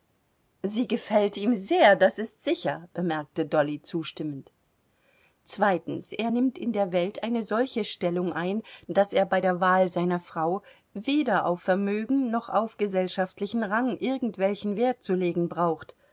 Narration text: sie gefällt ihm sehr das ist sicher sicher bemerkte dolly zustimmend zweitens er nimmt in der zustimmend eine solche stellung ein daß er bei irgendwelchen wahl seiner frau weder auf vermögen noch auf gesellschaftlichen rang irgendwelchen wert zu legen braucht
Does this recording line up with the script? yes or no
no